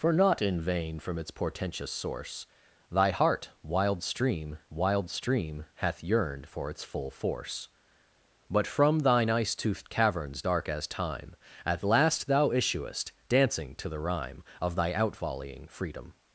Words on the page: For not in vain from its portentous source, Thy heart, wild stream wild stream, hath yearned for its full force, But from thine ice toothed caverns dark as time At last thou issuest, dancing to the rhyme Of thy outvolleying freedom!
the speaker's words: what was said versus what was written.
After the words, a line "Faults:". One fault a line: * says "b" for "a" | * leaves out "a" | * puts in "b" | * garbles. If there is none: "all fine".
For not in vain from its portentous source, Thy heart, wild stream wild stream, hath yearned for its full force, But from thine ice toothed caverns dark as time At last thou issuest, dancing to the rhyme Of thy outvolleying freedom!
Faults:
all fine